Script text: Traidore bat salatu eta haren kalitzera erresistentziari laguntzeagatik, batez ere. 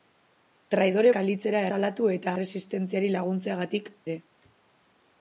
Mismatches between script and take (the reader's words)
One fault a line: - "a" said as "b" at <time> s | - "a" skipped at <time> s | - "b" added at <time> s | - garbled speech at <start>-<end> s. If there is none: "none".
- "bat" said as "kalitzera" at 1.2 s
- "haren kalitzera" skipped at 2.3 s
- "batez" skipped at 3.9 s